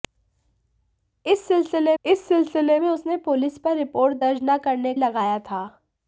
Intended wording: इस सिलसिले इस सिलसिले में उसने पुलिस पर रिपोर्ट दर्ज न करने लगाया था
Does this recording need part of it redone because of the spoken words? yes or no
no